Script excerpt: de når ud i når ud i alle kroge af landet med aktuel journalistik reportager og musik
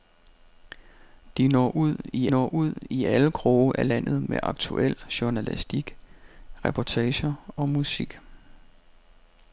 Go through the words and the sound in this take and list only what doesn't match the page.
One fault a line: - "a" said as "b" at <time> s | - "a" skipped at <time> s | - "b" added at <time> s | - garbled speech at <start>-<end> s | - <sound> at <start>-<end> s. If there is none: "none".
none